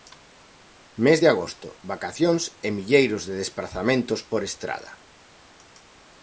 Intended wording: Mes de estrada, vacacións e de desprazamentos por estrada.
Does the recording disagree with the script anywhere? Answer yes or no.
yes